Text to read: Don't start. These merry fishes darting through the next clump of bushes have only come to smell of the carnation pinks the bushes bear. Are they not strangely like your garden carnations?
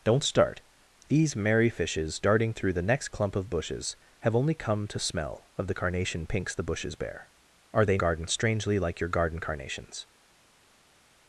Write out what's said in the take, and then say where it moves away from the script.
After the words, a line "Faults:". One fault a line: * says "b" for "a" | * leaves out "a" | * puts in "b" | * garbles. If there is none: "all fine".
Don't start. These merry fishes darting through the next clump of bushes have only come to smell of the carnation pinks the bushes bear. Are they garden strangely like your garden carnations?
Faults:
* says "garden" for "not"